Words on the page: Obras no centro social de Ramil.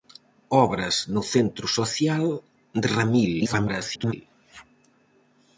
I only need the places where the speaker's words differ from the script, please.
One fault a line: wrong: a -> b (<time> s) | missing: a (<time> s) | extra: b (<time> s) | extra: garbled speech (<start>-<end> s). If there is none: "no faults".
extra: garbled speech (3.4-4.1 s)